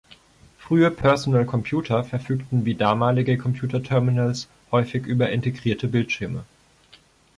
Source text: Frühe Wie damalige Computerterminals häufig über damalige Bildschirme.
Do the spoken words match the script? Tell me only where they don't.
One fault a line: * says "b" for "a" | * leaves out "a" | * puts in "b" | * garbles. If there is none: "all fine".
* puts in "Personal Computer verfügten"
* says "integrierte" for "damalige"